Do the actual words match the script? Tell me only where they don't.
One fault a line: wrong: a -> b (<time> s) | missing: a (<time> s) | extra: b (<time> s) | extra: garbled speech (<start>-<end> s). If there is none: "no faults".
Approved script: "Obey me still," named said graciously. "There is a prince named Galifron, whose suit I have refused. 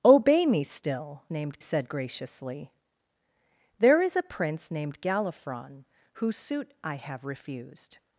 no faults